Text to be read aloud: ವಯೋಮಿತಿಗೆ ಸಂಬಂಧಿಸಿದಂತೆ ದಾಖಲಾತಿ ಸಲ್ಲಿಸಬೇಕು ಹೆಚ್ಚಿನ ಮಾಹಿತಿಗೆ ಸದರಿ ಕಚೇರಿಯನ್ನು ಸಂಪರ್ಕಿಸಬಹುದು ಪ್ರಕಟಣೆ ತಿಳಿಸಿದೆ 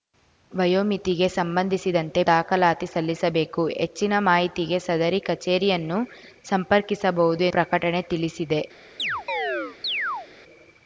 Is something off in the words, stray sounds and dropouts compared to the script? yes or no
yes